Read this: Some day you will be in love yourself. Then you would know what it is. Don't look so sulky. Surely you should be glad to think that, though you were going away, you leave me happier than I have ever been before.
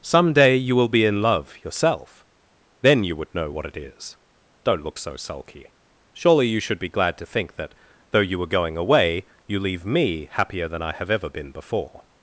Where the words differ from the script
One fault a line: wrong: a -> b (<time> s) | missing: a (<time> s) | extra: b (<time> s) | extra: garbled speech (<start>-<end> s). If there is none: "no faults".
no faults